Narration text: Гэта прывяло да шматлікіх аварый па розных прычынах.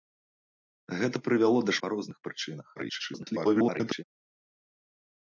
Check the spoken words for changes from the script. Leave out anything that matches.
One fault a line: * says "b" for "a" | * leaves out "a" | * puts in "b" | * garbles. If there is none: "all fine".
* leaves out "шматлікіх аварый"
* garbles